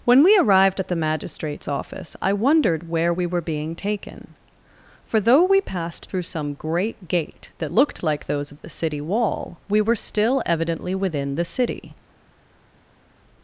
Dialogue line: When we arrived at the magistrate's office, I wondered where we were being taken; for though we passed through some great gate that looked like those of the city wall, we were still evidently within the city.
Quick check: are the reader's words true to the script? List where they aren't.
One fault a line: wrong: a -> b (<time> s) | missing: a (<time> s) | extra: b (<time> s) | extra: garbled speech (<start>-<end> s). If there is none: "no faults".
no faults